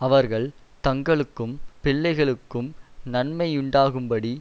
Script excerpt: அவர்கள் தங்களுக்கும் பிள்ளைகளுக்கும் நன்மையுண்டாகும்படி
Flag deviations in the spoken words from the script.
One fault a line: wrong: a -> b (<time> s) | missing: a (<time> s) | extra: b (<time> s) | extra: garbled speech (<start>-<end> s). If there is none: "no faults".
no faults